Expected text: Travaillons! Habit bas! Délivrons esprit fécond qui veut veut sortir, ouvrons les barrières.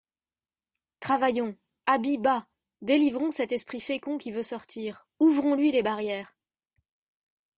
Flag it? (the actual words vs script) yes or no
yes